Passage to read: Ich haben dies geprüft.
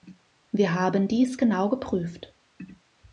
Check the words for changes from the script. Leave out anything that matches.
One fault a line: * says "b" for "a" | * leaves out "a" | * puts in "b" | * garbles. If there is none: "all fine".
* says "Wir" for "Ich"
* puts in "genau"